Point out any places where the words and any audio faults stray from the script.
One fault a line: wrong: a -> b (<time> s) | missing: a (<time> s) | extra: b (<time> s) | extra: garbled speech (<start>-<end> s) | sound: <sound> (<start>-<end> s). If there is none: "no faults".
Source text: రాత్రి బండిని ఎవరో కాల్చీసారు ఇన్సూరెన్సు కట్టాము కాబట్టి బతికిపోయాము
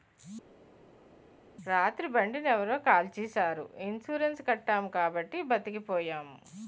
no faults